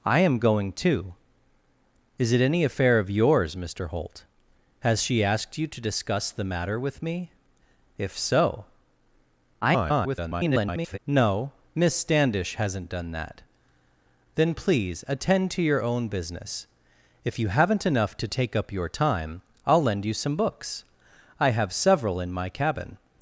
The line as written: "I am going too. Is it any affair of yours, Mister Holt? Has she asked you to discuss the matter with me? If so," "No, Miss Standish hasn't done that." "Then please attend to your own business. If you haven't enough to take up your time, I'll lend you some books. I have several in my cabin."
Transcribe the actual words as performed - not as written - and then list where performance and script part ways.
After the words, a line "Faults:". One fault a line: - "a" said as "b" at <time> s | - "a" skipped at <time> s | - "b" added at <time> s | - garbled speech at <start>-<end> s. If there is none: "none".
"I am going too. Is it any affair of yours, Mister Holt? Has she asked you to discuss the matter with me? If so," [garbled] "No, Miss Standish hasn't done that." "Then please attend to your own business. If you haven't enough to take up your time, I'll lend you some books. I have several in my cabin."
Faults:
- garbled speech at 9.6-11.0 s